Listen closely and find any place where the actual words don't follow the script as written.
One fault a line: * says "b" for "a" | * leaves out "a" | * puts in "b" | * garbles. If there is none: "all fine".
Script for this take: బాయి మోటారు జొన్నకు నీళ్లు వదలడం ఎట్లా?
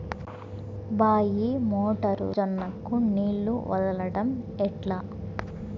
all fine